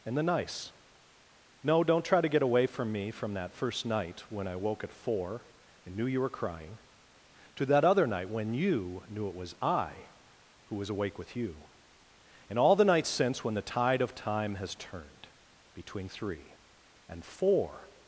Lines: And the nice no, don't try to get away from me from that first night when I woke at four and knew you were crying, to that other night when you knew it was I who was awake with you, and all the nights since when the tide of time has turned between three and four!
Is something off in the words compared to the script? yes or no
no